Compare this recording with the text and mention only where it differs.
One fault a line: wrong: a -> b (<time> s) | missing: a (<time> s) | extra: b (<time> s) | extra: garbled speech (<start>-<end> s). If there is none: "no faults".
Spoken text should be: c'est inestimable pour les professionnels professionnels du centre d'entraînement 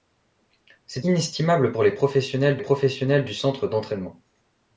no faults